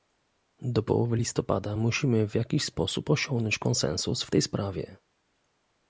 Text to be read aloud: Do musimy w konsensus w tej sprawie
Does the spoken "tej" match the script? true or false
true